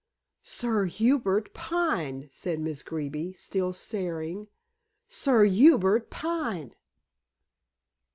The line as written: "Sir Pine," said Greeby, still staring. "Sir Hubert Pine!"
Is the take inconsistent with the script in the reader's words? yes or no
yes